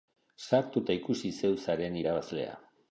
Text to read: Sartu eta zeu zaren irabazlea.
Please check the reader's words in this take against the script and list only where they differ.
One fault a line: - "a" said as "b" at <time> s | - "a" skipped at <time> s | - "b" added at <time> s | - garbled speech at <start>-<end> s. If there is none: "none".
- "ikusi" added at 1.0 s